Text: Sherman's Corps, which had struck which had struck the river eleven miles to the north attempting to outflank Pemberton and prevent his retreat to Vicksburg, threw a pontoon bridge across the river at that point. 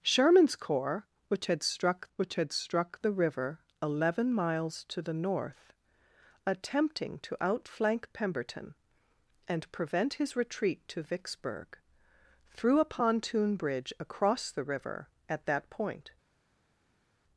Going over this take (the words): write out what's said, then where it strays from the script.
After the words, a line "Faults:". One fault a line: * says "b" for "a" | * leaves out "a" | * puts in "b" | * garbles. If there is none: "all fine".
Sherman's Corps, which had struck which had struck the river eleven miles to the north attempting to outflank Pemberton and prevent his retreat to Vicksburg, threw a pontoon bridge across the river at that point.
Faults:
all fine